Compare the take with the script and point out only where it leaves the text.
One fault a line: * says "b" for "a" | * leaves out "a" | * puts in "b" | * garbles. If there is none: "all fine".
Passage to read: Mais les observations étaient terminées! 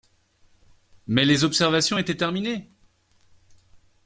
all fine